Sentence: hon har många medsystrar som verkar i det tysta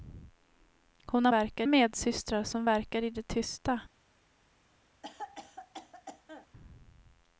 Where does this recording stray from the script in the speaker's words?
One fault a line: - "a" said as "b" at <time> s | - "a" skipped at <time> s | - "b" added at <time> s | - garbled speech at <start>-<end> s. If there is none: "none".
- "många" said as "verkar" at 1.3 s